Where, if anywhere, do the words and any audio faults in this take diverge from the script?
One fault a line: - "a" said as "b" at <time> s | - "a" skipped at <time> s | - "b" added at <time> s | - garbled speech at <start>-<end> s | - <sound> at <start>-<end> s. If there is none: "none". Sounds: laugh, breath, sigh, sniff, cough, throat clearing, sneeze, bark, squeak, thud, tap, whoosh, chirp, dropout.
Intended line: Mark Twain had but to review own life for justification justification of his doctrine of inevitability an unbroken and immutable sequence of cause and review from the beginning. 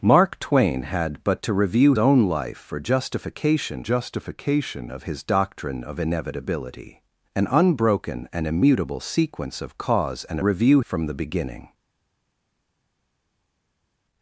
none